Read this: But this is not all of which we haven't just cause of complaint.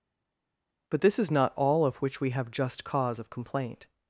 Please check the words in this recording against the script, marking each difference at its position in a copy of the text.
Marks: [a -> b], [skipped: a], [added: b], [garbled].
But this is not all of which we [haven't -> have] just cause of complaint.